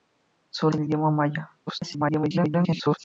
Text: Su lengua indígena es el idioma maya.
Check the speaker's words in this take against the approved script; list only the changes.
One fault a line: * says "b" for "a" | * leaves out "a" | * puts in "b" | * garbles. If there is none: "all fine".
* leaves out "lengua indígena es"
* garbles